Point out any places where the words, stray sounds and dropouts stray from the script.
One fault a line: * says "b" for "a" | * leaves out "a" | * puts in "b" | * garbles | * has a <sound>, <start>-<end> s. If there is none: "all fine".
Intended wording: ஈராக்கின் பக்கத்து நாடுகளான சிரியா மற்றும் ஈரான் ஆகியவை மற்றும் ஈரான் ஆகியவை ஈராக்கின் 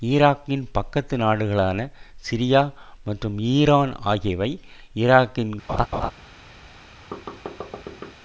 * leaves out "மற்றும் ஈரான் ஆகியவை"
* has a laugh, 5.7-6.1 s
* has a thud, 7.1-8.2 s